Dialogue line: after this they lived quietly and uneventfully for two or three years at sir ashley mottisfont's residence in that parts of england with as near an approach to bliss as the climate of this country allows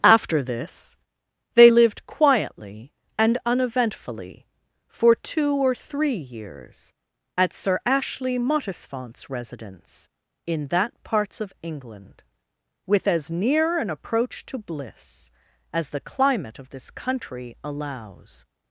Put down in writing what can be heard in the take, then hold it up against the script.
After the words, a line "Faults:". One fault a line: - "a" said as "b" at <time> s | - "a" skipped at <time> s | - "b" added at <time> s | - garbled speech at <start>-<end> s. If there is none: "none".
after this they lived quietly and uneventfully for two or three years at sir ashley mottisfont's residence in that parts of england with as near an approach to bliss as the climate of this country allows
Faults:
none